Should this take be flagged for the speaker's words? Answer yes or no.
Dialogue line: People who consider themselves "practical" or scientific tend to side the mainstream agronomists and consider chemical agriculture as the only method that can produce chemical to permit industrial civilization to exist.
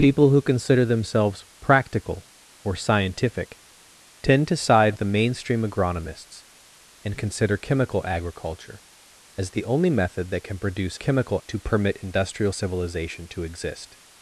no